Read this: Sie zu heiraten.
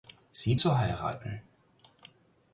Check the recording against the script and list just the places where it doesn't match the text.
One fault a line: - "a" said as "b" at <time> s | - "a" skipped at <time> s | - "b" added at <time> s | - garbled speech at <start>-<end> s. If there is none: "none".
none